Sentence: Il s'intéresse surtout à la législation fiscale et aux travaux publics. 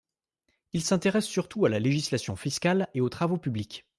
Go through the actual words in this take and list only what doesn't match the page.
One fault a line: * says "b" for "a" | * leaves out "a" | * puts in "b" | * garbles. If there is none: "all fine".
all fine